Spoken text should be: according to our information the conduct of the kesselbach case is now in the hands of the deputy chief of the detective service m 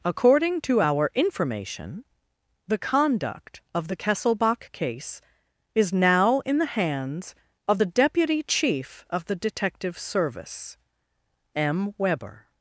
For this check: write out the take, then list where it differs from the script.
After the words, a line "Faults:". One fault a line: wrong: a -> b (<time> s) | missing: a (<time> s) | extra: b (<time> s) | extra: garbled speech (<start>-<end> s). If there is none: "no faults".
according to our information the conduct of the kesselbach case is now in the hands of the deputy chief of the detective service m weber
Faults:
extra: weber (12.0 s)